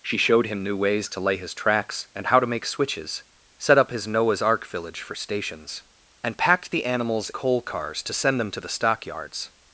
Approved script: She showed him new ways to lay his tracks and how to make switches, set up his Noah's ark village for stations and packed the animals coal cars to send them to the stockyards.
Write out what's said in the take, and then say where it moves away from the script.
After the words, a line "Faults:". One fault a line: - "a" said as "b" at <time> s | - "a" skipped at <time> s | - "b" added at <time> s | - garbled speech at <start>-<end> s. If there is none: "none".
She showed him new ways to lay his tracks and how to make switches, set up his Noah's ark village for stations and packed the animals coal cars to send them to the stockyards.
Faults:
none